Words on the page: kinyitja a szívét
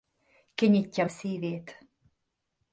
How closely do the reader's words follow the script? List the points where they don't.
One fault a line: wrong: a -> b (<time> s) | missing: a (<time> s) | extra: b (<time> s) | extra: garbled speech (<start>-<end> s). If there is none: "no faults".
no faults